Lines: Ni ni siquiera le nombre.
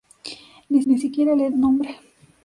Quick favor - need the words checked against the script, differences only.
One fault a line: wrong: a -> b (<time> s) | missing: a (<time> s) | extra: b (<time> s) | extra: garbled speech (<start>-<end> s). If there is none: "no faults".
no faults